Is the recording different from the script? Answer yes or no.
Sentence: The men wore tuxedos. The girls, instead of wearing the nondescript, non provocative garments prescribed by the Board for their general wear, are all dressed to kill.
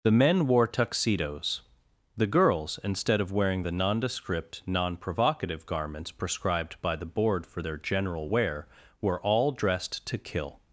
yes